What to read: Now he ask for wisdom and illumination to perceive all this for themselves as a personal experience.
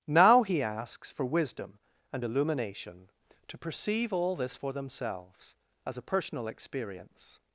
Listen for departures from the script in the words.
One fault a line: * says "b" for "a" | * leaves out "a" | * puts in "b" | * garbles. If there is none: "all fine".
* says "asks" for "ask"